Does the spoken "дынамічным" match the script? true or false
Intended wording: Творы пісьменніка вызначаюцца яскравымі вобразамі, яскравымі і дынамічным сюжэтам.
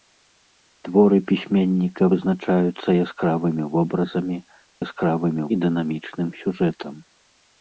true